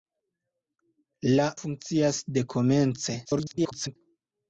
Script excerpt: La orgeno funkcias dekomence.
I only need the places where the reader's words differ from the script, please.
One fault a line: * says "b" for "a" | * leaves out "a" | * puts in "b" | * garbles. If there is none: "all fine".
* leaves out "orgeno"
* garbles